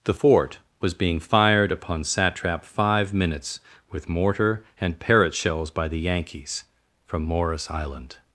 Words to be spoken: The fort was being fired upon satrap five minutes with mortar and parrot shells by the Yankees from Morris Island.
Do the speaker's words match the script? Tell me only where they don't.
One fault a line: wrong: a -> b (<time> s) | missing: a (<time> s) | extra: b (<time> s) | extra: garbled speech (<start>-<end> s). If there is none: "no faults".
no faults